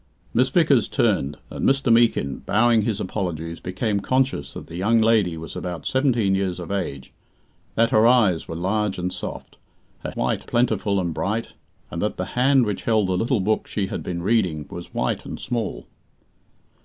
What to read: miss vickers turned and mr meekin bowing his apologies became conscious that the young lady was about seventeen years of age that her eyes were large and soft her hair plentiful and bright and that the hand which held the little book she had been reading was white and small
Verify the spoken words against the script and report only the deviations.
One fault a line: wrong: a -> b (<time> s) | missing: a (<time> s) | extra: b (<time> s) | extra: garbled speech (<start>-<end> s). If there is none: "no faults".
wrong: hair -> white (10.1 s)